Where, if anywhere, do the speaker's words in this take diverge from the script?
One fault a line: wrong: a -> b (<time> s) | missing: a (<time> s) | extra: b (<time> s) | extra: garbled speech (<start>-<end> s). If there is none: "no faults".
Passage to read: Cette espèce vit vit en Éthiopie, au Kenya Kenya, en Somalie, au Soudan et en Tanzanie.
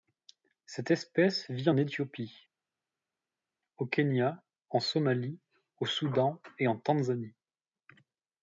missing: vit (1.7 s)
missing: Kenya (4.4 s)